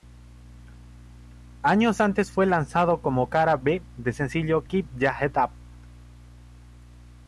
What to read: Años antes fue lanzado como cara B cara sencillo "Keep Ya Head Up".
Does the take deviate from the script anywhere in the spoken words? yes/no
yes